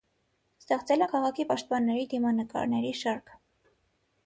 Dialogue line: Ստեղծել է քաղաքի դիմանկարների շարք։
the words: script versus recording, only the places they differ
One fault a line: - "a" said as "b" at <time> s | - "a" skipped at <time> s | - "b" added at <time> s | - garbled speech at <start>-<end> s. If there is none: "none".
- "պաշտպանների" added at 1.5 s